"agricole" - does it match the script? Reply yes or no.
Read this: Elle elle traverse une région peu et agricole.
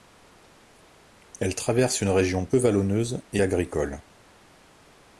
yes